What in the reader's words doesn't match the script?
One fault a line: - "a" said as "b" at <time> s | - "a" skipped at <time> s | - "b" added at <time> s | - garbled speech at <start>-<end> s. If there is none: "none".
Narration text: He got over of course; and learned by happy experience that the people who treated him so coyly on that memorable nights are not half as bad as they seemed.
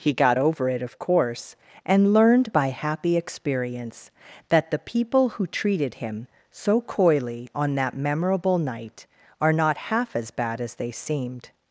- "it" added at 0.7 s
- "nights" said as "night" at 8.6 s